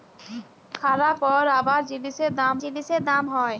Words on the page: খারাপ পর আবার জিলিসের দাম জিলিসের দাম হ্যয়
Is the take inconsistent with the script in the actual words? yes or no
no